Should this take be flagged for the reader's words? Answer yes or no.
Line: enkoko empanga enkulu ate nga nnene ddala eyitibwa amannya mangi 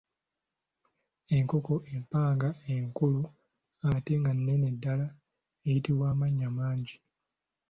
no